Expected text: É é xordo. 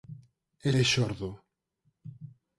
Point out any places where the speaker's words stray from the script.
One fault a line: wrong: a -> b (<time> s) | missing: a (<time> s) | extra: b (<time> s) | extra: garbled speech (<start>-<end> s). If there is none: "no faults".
no faults